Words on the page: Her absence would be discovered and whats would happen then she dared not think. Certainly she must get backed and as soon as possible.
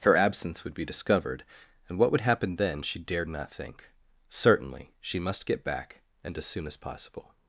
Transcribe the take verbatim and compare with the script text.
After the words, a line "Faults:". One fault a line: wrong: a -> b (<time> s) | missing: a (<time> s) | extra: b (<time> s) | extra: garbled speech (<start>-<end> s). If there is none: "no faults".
Her absence would be discovered and what would happen then she dared not think. Certainly she must get back and as soon as possible.
Faults:
wrong: whats -> what (2.0 s)
wrong: backed -> back (5.6 s)